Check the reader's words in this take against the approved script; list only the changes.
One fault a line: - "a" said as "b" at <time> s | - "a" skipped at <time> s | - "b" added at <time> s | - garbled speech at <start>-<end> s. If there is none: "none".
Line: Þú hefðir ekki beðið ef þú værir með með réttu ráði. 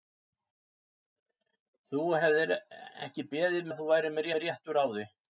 none